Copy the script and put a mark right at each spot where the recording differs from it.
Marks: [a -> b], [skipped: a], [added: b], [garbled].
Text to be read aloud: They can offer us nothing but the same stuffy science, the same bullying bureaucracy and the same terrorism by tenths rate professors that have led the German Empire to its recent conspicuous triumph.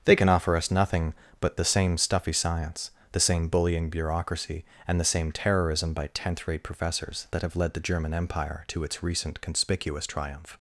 They can offer us nothing but the same stuffy science, the same bullying bureaucracy and the same terrorism by [tenths -> tenth] rate professors that have led the German Empire to its recent conspicuous triumph.